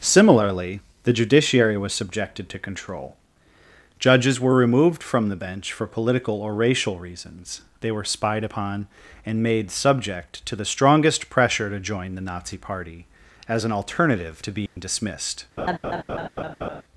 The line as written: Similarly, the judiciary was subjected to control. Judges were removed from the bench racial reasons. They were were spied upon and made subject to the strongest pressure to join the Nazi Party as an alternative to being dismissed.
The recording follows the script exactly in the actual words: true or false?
false